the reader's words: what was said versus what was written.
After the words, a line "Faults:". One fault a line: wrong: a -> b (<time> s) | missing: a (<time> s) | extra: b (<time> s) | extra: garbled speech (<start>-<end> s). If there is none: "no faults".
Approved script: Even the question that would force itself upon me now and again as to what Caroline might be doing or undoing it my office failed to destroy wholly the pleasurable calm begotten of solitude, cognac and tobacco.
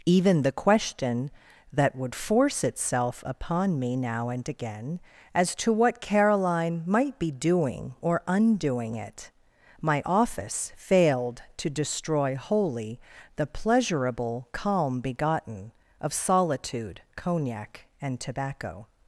Even the question that would force itself upon me now and again as to what Caroline might be doing or undoing it my office failed to destroy wholly the pleasurable calm begotten of solitude, cognac and tobacco.
Faults:
no faults